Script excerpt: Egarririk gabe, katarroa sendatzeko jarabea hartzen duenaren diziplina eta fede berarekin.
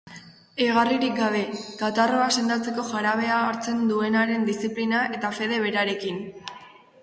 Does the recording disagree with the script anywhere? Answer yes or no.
no